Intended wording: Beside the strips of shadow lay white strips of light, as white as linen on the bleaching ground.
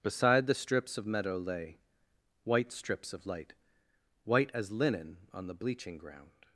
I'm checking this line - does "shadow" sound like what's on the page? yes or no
no